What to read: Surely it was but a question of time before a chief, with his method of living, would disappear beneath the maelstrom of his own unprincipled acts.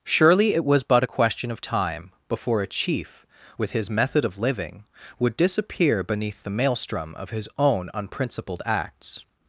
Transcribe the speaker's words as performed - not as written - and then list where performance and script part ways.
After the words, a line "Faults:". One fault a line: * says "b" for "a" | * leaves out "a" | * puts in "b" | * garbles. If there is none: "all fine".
Surely it was but a question of time before a chief, with his method of living, would disappear beneath the maelstrom of his own unprincipled acts.
Faults:
all fine